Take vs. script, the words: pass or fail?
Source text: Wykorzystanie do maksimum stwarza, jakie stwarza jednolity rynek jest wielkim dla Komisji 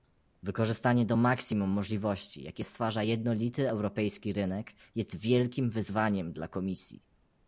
fail